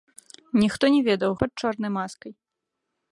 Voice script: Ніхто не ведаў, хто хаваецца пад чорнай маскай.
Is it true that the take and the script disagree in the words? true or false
true